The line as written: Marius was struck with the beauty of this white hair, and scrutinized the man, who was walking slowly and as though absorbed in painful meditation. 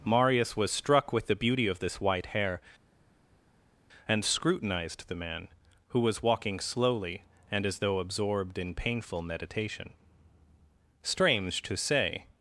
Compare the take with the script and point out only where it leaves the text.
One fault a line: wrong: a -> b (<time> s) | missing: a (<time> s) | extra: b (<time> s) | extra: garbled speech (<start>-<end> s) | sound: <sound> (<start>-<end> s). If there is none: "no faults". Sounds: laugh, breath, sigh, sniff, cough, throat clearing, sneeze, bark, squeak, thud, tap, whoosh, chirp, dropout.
extra: Strange to say (11.0 s)